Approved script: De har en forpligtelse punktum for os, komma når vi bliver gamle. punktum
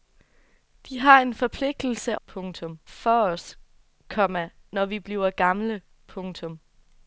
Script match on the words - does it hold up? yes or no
yes